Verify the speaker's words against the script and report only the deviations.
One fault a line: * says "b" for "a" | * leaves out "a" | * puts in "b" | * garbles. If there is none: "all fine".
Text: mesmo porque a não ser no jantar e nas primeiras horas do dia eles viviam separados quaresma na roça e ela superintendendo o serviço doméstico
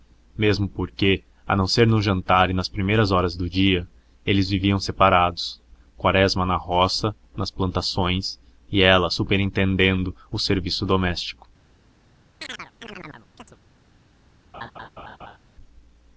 * puts in "nas plantações"